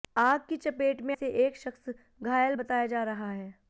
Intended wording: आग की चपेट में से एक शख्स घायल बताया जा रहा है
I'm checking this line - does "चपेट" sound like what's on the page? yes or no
yes